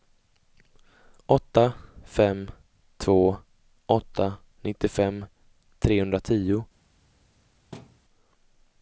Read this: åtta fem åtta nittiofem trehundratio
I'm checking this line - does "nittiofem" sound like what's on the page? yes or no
yes